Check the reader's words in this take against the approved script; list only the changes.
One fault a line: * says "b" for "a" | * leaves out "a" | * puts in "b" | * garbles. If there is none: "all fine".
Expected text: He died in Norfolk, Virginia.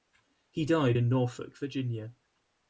all fine